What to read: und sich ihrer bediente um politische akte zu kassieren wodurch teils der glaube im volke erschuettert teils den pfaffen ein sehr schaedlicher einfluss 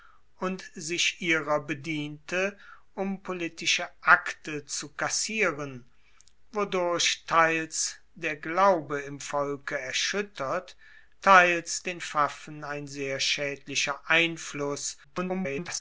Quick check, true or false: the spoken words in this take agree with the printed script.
false